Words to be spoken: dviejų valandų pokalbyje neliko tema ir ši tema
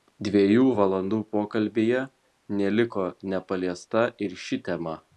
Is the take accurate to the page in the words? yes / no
no